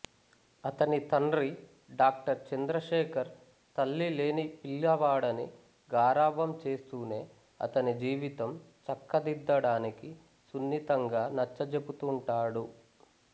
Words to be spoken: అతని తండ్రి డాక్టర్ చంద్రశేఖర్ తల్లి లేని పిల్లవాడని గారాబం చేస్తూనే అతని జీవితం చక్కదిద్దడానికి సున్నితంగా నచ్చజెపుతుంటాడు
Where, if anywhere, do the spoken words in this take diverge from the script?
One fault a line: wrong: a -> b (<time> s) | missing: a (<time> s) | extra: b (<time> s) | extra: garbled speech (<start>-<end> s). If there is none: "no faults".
no faults